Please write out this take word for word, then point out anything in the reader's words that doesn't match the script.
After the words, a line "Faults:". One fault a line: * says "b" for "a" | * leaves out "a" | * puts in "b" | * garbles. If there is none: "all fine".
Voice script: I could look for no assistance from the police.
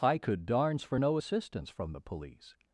I could darns for no assistance from the police.
Faults:
* says "darns" for "look"